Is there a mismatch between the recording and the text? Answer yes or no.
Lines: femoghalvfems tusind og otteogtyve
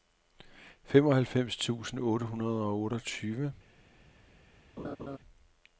yes